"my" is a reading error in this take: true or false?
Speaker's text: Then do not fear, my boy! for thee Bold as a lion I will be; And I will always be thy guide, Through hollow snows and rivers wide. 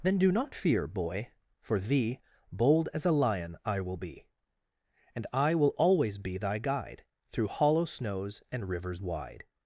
true